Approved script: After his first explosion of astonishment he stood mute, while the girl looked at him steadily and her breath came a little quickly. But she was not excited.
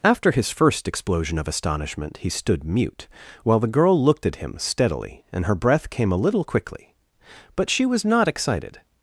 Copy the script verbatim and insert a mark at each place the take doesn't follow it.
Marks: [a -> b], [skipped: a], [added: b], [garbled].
After his first explosion of astonishment he stood mute, while the girl looked at him steadily and her breath came a little quickly. But she was not excited.